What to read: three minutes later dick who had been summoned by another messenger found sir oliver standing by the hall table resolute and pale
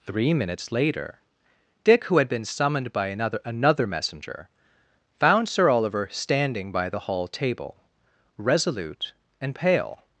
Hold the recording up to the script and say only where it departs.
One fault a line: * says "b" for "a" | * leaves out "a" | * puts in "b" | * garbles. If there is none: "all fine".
* puts in "another"